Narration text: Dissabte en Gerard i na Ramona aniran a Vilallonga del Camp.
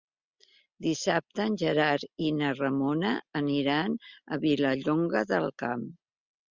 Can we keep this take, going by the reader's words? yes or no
yes